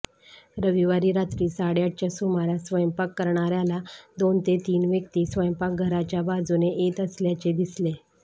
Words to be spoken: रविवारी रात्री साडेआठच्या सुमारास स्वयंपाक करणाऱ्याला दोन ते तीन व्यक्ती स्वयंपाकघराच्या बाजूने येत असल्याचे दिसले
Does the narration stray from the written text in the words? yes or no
no